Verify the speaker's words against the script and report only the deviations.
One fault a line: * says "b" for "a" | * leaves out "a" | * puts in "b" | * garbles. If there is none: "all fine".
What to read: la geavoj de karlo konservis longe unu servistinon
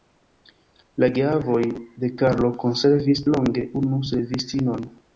all fine